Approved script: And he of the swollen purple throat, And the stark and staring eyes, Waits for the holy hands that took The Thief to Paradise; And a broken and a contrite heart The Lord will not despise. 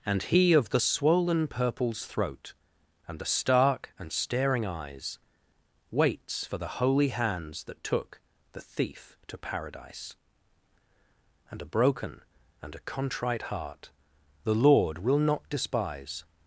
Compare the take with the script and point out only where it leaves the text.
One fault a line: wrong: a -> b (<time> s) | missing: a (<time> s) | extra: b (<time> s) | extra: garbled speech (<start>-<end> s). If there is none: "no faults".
wrong: purple -> purples (1.5 s)